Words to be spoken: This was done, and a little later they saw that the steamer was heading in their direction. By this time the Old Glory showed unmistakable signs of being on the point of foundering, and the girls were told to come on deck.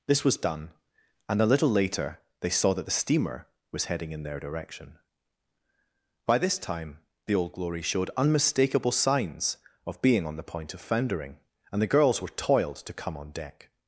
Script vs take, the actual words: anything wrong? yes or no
yes